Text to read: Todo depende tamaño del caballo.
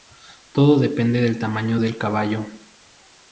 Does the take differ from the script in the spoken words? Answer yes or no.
yes